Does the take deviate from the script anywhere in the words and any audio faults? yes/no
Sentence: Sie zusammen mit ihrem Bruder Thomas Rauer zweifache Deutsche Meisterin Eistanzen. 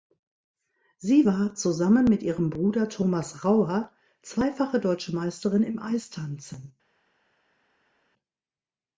yes